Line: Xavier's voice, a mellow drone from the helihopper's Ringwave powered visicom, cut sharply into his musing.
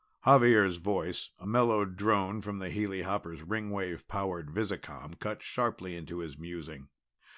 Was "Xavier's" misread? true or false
false